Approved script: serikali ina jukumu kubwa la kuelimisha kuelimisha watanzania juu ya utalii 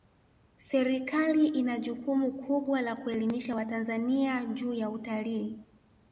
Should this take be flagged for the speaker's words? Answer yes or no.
yes